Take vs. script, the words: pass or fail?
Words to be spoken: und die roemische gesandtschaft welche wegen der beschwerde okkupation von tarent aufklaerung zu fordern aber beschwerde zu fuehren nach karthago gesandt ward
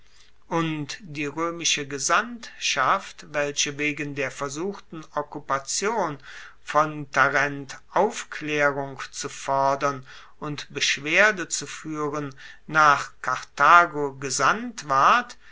fail